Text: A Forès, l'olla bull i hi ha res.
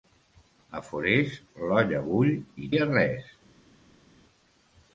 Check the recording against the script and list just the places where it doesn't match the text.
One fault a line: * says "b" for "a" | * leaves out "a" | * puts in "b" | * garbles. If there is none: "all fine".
all fine